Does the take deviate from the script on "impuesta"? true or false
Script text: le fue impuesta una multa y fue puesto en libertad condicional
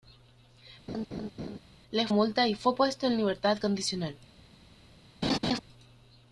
true